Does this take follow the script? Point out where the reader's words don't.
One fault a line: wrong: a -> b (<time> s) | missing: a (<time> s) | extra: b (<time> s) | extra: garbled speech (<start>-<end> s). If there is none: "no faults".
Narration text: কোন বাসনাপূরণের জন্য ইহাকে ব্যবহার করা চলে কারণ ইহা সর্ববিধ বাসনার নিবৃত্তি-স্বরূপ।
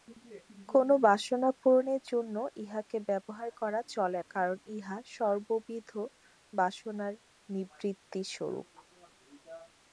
no faults